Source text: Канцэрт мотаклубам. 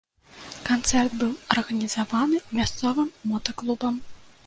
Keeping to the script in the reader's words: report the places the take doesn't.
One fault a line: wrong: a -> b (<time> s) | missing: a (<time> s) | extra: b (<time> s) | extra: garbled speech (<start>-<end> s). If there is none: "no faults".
extra: быў арганізаваны мясцовым (1.2 s)